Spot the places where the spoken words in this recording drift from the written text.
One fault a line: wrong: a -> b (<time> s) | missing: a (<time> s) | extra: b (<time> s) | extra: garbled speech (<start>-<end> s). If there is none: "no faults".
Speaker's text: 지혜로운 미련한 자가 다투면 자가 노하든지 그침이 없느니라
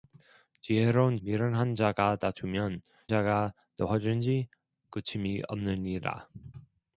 no faults